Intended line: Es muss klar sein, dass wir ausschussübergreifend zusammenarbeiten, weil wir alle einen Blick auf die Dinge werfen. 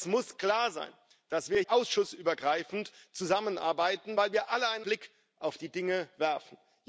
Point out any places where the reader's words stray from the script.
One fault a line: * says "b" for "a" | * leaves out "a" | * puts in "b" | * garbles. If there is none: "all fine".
all fine